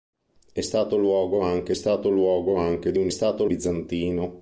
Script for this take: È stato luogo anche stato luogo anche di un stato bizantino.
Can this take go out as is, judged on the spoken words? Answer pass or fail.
pass